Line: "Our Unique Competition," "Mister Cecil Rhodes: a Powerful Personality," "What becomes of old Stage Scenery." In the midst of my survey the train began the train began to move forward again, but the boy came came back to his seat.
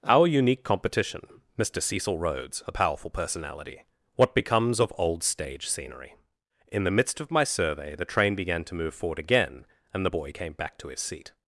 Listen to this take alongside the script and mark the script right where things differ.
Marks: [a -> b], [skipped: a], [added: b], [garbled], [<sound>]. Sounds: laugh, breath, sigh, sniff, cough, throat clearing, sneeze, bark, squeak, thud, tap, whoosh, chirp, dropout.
"Our Unique Competition," "Mister Cecil Rhodes: a Powerful Personality," "What becomes of old Stage Scenery." In the midst of my survey the train began [skipped: the train began] to move forward again, [but -> and] the boy came [skipped: came] back to his seat.